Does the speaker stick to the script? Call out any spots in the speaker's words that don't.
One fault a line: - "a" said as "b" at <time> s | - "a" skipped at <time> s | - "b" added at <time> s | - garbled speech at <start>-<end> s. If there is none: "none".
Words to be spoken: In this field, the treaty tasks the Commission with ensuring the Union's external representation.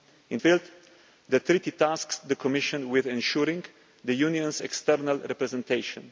- "this" skipped at 0.4 s